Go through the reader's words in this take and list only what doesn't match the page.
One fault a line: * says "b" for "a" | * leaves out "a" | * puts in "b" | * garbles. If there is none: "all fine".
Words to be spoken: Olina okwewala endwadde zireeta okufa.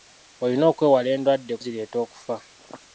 all fine